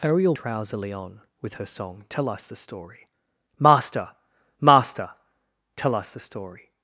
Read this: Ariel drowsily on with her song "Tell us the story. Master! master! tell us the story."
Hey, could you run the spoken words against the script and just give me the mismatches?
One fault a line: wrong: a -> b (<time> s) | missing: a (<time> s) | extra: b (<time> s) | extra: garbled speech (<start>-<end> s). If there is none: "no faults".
no faults